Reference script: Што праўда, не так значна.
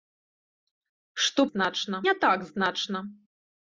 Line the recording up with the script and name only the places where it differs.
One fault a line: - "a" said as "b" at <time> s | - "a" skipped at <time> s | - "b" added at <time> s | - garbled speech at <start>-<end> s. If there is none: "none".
- "праўда" said as "значна" at 1.5 s